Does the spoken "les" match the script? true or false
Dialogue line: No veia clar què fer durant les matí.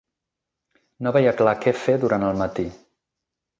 false